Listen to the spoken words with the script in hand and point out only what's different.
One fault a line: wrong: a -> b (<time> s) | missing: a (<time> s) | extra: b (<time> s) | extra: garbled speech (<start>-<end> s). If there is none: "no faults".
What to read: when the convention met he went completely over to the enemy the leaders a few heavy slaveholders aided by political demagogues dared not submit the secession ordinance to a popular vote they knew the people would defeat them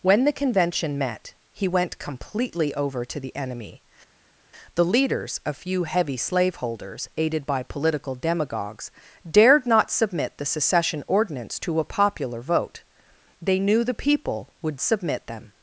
wrong: defeat -> submit (14.8 s)